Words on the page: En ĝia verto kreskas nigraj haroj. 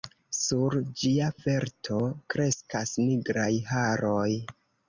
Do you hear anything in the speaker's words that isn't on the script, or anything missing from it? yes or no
yes